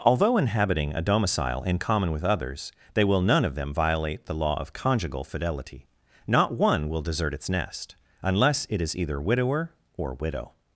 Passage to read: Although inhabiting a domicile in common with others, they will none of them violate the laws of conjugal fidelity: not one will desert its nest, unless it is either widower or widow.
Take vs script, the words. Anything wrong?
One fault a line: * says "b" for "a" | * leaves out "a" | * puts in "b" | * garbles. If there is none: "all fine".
* says "law" for "laws"